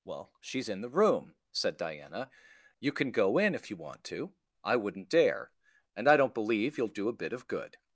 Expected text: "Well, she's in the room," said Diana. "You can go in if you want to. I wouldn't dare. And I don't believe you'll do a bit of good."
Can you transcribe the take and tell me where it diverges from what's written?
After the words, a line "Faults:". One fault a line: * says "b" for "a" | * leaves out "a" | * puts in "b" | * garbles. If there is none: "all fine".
"Well, she's in the room," said Diana. "You can go in if you want to. I wouldn't dare. And I don't believe you'll do a bit of good."
Faults:
all fine